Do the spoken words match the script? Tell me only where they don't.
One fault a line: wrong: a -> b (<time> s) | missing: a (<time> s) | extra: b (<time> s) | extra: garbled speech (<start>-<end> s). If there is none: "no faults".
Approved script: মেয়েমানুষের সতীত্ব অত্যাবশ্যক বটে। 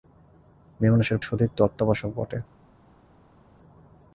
no faults